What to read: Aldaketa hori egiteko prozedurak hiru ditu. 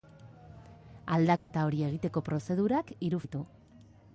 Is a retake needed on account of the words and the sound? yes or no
yes